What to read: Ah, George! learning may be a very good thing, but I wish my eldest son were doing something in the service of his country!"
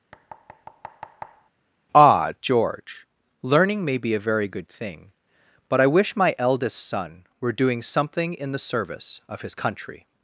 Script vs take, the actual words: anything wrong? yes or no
no